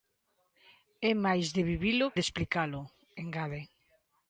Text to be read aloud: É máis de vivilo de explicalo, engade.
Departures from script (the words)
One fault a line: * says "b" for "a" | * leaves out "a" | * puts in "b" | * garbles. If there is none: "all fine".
all fine